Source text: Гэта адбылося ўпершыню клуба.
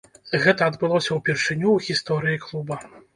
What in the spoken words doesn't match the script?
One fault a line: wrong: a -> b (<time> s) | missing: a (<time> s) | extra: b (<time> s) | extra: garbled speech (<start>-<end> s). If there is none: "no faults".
extra: ў гісторыі (1.7 s)